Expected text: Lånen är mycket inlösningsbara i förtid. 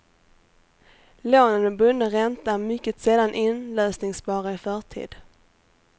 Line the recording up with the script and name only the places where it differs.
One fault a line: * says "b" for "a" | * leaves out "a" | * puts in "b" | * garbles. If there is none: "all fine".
* puts in "med bunden ränta"
* puts in "sällan"